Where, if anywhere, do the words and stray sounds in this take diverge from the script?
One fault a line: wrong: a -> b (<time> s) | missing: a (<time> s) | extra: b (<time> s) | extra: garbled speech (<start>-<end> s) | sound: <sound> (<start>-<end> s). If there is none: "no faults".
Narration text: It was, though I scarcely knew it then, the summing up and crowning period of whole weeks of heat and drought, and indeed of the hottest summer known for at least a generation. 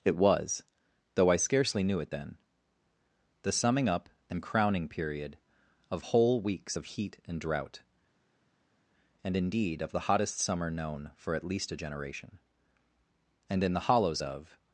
extra: And in the hollows of (13.5 s)